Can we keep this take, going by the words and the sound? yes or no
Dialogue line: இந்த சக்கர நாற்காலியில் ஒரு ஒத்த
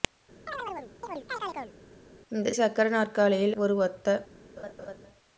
no